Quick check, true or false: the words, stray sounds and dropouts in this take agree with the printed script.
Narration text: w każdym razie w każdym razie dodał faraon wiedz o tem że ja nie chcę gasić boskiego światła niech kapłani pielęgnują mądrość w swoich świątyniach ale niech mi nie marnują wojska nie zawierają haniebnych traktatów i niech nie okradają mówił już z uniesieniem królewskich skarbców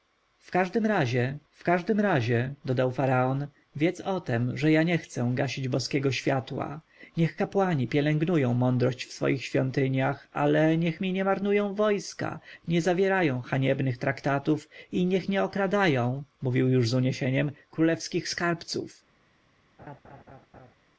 false